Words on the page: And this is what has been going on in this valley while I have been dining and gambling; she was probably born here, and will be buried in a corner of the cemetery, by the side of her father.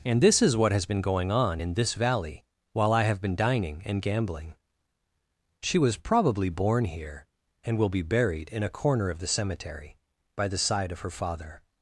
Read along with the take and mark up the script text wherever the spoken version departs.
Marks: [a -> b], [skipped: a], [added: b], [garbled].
And this is what has been going on in this valley while I have been dining and gambling; she was probably born here, and will be buried in a corner of the cemetery, by the side of her father.